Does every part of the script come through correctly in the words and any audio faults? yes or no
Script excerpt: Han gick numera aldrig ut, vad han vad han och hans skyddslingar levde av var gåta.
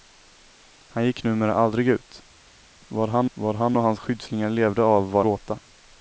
yes